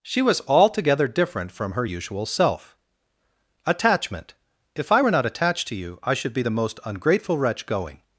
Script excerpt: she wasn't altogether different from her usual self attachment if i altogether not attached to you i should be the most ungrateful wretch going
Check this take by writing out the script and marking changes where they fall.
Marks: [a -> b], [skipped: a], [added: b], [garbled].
she [wasn't -> was] altogether different from her usual self attachment if i [altogether -> were] not attached to you i should be the most ungrateful wretch going